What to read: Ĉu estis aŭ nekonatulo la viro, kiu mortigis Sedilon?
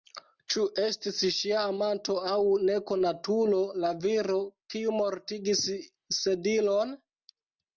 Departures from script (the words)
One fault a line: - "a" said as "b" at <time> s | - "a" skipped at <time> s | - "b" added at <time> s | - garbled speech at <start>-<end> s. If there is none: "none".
- "ŝia amanto" added at 1.4 s